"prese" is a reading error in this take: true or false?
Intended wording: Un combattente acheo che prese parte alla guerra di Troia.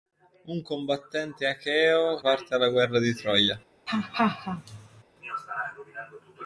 true